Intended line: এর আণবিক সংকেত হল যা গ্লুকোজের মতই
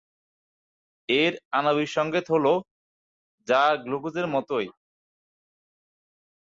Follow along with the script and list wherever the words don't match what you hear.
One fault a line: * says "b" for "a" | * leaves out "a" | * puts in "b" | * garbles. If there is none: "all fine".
all fine